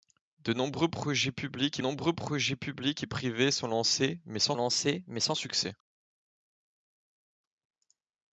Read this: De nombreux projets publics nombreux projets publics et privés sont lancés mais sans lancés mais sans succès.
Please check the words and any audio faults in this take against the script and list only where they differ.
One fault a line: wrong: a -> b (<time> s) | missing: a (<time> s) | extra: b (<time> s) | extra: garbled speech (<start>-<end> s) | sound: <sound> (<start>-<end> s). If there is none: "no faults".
no faults